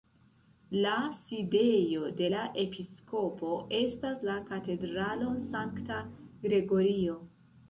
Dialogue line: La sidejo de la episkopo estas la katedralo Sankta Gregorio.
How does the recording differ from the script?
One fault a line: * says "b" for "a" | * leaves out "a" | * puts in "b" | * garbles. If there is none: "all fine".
all fine